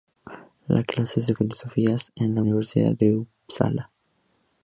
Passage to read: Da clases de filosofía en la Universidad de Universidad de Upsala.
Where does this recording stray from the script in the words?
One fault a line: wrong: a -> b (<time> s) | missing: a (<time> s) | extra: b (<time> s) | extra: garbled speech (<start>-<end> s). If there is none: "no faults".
missing: Universidad de (3.2 s)